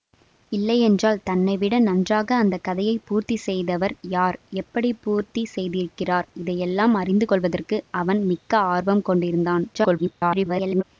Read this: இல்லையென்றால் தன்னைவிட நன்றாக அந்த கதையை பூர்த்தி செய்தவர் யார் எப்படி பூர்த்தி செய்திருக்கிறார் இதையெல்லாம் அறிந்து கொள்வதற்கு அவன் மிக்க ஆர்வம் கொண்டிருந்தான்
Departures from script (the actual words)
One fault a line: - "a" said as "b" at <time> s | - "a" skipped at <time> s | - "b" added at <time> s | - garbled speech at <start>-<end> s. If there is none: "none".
- garbled speech at 9.7-10.8 s